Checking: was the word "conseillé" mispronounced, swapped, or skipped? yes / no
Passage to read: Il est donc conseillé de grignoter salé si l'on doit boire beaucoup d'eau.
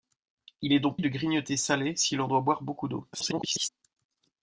yes